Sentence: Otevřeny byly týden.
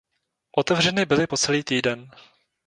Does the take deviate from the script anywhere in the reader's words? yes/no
yes